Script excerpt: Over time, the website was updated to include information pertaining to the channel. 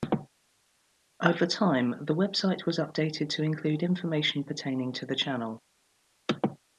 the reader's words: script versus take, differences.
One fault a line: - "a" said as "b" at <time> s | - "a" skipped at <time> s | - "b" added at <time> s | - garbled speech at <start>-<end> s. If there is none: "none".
none